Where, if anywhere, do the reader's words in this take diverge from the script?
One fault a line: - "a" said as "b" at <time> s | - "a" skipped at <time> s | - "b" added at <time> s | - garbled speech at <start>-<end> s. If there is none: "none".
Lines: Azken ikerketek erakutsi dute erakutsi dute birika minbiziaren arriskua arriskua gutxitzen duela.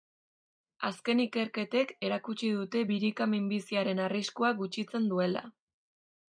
- "erakutsi dute" skipped at 2.8 s
- "arriskua" skipped at 4.5 s